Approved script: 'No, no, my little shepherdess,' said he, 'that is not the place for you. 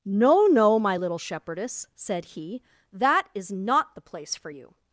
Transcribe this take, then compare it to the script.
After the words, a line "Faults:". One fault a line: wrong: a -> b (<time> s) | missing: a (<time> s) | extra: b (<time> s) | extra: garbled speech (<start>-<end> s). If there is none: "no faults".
'No, no, my little shepherdess,' said he, 'that is not the place for you.
Faults:
no faults